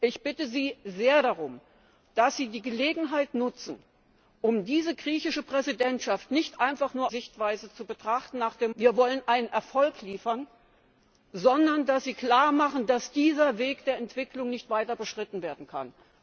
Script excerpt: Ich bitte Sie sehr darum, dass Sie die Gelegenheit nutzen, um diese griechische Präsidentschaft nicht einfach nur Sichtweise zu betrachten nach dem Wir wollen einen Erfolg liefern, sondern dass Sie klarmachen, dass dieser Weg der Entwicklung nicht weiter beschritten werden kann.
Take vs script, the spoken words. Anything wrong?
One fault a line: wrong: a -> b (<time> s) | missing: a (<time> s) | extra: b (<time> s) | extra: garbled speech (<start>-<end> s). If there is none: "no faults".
no faults